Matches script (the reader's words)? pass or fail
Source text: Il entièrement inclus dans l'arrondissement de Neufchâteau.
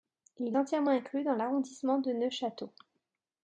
pass